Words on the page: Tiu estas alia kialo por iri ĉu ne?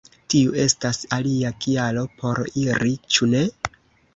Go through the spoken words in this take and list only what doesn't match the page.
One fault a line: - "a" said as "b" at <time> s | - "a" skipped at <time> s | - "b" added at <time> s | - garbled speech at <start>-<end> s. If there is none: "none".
none